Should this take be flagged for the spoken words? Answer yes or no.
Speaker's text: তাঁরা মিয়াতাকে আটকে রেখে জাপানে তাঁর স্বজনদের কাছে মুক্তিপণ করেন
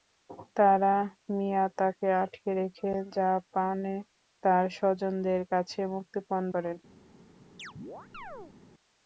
no